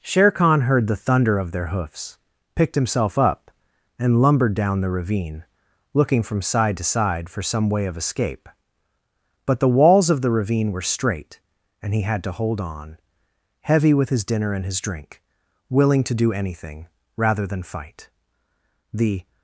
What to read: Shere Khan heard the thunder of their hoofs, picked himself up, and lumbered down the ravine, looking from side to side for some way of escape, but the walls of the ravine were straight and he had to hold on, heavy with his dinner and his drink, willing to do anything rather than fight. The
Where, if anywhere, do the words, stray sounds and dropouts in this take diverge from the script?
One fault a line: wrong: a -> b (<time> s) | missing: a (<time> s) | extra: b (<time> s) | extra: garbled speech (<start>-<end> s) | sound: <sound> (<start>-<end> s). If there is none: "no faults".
no faults